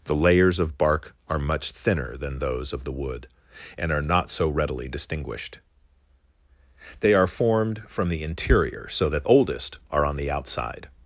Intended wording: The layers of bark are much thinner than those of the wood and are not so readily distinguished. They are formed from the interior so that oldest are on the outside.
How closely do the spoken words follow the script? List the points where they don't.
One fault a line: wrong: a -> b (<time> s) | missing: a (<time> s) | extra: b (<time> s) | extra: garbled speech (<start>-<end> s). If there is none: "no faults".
no faults